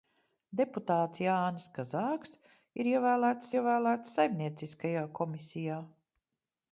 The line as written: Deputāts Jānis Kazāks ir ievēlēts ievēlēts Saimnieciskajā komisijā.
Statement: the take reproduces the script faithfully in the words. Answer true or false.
true